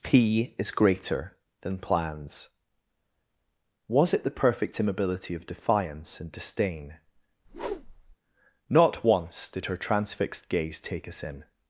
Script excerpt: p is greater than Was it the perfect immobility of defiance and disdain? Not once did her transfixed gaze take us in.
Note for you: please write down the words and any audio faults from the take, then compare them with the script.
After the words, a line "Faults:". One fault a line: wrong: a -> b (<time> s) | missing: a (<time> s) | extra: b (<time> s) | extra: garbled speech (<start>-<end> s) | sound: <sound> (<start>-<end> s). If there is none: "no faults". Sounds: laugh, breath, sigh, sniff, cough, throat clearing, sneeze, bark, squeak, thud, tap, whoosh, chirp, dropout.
p is greater than plans Was it the perfect immobility of defiance and disdain? Not once did her transfixed gaze take us in.
Faults:
extra: plans (1.8 s)
sound: whoosh (7.4-8.2 s)